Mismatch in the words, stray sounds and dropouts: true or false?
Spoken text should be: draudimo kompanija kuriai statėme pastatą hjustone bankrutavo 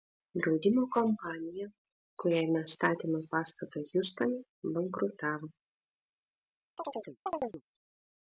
true